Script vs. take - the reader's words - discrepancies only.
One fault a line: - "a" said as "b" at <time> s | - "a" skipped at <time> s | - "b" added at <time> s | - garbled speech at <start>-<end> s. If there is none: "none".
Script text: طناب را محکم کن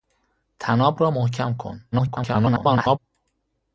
- garbled speech at 1.9-3.0 s